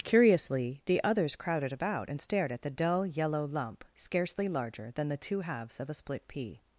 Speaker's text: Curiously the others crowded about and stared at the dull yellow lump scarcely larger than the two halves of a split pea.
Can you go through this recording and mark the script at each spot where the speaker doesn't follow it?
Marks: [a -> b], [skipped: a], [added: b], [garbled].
Curiously the others crowded about and stared at the dull yellow lump scarcely larger than the two halves of a split pea.